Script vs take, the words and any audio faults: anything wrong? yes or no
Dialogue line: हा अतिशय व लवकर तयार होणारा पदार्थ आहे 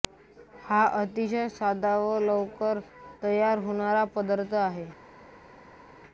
yes